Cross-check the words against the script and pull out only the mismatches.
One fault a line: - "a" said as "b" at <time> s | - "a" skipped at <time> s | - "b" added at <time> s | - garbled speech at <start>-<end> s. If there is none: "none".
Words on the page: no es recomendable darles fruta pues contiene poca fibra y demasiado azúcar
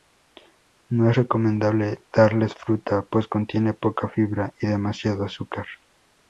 none